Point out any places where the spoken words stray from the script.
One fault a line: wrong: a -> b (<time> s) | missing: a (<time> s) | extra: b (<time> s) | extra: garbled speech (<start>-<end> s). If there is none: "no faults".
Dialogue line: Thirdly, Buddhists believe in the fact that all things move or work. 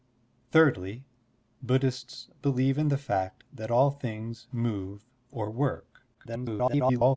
extra: garbled speech (6.1-7.2 s)